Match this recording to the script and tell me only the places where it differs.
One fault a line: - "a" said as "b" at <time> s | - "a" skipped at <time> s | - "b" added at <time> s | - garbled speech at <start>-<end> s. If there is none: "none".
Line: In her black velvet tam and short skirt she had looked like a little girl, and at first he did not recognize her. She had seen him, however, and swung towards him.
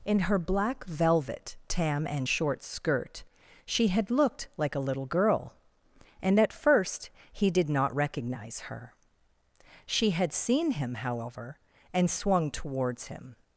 none